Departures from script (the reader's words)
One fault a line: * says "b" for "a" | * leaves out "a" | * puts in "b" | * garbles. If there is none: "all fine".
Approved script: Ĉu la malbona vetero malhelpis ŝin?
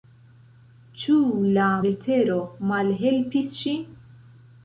* leaves out "malbona"